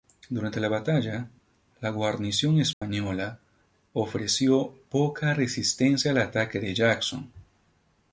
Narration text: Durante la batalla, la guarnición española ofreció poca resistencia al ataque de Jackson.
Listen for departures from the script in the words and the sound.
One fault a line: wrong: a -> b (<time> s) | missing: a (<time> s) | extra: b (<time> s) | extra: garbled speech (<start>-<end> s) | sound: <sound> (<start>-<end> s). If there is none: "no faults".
sound: dropout (2.7-2.8 s)